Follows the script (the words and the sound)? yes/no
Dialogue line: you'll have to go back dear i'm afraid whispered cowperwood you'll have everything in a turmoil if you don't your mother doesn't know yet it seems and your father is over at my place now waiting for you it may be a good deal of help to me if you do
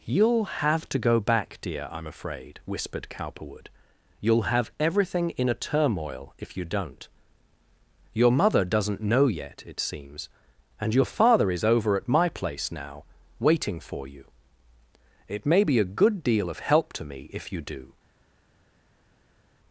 yes